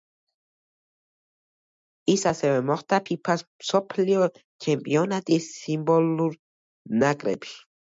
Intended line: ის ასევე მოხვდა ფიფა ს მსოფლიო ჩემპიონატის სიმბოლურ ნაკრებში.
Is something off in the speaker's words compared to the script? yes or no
no